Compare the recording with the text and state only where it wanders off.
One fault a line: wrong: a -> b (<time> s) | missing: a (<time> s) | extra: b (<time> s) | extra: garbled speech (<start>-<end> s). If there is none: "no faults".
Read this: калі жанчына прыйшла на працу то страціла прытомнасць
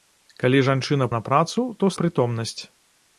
missing: прыйшла (1.1 s)
missing: страціла (1.9 s)